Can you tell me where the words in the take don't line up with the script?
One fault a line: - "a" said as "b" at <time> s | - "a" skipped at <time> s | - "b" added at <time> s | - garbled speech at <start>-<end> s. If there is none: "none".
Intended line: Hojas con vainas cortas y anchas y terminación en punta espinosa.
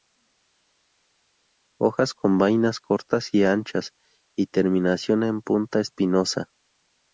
none